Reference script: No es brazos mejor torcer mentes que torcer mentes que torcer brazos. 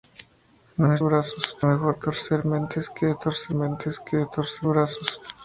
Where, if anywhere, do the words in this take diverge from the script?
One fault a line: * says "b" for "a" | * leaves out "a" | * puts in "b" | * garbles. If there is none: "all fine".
all fine